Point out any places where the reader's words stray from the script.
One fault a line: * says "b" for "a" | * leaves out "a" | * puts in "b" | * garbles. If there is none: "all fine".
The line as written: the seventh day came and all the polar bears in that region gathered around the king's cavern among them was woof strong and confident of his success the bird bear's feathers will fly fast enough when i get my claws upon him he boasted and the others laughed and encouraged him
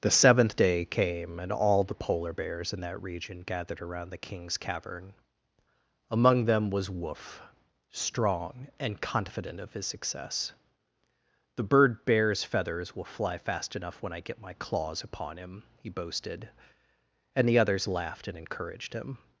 all fine